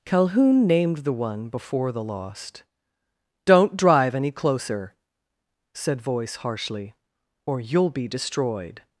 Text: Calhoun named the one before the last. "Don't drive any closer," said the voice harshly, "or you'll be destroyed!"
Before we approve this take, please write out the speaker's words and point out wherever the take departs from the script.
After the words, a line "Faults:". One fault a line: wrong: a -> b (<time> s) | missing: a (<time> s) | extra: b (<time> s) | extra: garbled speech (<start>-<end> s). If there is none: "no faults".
Calhoun named the one before the lost. "Don't drive any closer," said voice harshly, "or you'll be destroyed!"
Faults:
wrong: last -> lost (2.0 s)
missing: the (6.0 s)